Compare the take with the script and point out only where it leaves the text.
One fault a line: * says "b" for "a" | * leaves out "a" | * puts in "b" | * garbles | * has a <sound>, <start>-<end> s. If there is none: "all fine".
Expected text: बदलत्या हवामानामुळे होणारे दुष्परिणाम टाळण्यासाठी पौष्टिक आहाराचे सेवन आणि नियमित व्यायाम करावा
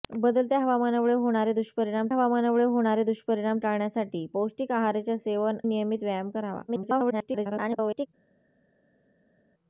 * puts in "हवामानामुळे होणारे दुष्परिणाम"
* leaves out "आणि"
* garbles